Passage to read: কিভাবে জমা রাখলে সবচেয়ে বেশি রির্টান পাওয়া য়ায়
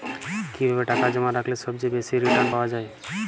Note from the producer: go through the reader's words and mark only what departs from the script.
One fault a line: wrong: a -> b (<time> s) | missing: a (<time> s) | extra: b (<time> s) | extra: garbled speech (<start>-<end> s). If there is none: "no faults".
extra: টাকা (0.8 s)